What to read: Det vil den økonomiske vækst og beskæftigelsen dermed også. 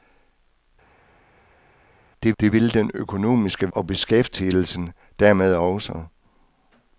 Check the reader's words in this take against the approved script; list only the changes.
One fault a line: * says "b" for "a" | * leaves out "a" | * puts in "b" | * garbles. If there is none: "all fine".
* puts in "det"
* leaves out "vækst"